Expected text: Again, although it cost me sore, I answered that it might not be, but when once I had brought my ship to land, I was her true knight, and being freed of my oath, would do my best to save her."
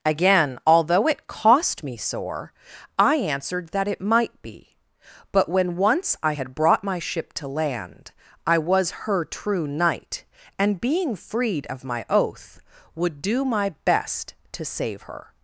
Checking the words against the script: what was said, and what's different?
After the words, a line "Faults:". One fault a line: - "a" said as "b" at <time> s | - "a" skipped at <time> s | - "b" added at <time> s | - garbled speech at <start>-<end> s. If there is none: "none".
Again, although it cost me sore, I answered that it might be, but when once I had brought my ship to land, I was her true knight, and being freed of my oath, would do my best to save her."
Faults:
- "not" skipped at 4.4 s